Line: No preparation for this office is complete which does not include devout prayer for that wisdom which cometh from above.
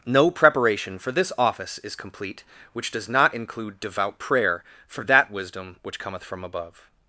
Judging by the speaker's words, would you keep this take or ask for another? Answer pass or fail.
pass